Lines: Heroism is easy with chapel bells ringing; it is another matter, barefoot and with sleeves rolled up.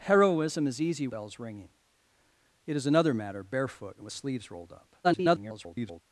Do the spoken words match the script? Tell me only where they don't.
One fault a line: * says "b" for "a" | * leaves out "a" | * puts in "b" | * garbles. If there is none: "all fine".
* leaves out "with chapel"
* garbles